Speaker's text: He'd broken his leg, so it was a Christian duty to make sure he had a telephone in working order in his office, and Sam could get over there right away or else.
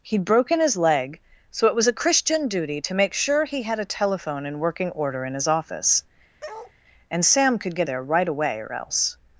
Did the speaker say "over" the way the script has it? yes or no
no